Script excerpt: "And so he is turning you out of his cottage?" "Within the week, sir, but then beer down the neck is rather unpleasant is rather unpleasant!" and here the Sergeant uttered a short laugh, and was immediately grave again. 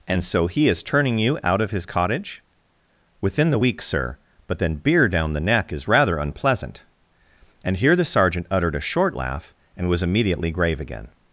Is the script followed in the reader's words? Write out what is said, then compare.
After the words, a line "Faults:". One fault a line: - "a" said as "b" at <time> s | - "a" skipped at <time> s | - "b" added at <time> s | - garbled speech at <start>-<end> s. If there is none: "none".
"And so he is turning you out of his cottage?" "Within the week, sir, but then beer down the neck is rather unpleasant!" and here the Sergeant uttered a short laugh, and was immediately grave again.
Faults:
- "is rather unpleasant" skipped at 6.8 s